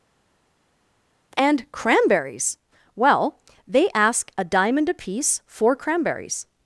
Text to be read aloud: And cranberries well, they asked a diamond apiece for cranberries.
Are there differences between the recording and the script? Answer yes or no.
yes